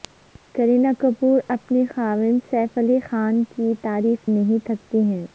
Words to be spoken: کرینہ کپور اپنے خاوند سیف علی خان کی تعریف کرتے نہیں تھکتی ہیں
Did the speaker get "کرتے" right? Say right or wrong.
wrong